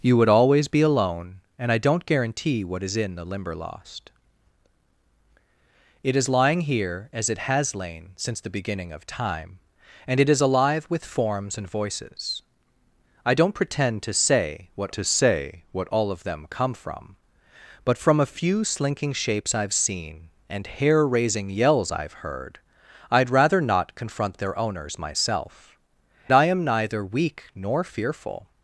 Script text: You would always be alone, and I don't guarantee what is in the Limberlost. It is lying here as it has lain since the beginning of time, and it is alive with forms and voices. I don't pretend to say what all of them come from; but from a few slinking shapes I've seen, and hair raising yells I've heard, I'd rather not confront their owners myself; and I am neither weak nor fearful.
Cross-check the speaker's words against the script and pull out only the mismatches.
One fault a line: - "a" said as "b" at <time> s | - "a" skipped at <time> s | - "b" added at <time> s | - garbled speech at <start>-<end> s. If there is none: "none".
- "to say what" added at 14.9 s
- "and" skipped at 25.8 s